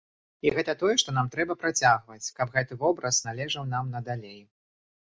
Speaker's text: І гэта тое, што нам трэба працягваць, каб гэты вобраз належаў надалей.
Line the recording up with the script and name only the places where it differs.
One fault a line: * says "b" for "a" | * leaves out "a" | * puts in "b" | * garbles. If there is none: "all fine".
* puts in "нам"